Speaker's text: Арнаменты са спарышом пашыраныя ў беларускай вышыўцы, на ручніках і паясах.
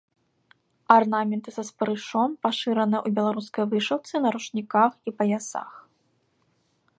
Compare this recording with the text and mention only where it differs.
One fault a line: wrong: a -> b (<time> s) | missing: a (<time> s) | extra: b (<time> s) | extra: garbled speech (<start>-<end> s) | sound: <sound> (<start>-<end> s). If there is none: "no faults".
no faults